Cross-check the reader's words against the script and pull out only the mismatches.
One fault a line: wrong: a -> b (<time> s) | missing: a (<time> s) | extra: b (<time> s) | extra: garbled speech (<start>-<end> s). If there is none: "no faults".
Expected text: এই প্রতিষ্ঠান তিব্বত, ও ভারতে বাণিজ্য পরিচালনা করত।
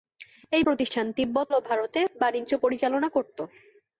no faults